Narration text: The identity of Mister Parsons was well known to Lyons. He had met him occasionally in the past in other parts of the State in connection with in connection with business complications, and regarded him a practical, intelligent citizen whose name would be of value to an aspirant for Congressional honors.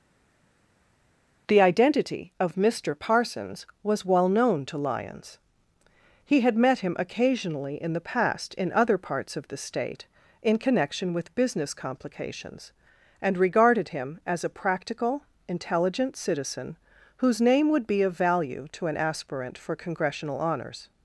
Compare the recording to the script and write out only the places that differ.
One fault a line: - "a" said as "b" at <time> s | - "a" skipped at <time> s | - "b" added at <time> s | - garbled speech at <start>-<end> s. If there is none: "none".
- "in connection with" skipped at 11.3 s
- "as" added at 14.3 s